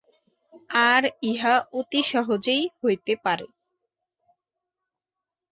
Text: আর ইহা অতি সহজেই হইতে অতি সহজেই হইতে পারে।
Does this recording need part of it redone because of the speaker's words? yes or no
yes